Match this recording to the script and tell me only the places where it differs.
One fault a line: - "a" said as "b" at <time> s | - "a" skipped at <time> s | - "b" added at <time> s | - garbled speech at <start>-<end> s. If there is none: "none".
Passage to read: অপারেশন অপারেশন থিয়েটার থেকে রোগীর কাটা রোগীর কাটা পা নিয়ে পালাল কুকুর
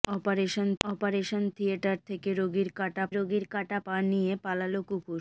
none